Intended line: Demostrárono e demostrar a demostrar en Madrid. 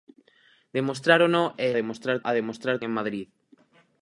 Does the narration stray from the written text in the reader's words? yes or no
no